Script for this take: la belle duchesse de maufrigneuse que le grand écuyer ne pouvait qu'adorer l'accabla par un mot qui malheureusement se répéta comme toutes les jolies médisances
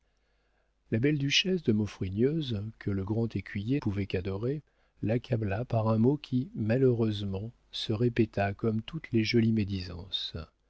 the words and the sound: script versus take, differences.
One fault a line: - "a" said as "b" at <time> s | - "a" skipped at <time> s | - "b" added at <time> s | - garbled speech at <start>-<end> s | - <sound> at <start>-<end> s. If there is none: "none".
- "ne" skipped at 3.8 s